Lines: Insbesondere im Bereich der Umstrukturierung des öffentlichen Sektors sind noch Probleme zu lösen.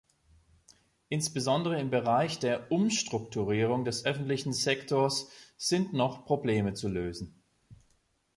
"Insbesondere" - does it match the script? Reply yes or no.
yes